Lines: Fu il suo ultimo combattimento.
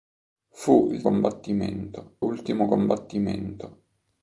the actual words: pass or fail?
fail